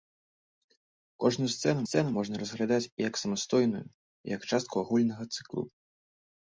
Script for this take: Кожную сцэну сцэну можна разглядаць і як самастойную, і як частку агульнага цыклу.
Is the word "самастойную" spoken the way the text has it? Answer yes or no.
yes